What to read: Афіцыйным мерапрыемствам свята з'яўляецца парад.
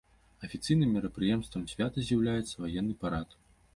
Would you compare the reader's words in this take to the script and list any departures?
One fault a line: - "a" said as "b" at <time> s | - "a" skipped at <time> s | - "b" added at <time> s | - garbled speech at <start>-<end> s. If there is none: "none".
- "ваенны" added at 2.7 s